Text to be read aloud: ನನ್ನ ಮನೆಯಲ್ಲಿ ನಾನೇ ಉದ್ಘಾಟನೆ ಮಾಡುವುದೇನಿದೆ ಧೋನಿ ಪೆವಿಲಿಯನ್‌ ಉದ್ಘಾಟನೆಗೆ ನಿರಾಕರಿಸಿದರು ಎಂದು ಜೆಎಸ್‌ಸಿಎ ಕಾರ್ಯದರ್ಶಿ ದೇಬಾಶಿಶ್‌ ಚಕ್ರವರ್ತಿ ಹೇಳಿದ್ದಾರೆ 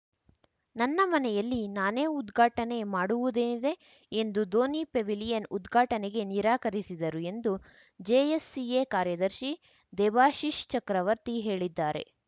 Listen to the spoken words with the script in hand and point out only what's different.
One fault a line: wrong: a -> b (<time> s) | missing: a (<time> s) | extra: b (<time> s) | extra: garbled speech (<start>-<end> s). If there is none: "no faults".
extra: ಎಂದು (4.1 s)